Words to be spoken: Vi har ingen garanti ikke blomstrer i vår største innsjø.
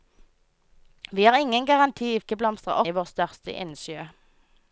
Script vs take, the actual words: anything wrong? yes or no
no